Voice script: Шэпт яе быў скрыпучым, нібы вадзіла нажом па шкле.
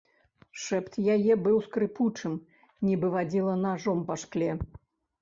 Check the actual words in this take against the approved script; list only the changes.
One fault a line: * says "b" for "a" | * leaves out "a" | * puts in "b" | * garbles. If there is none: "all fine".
all fine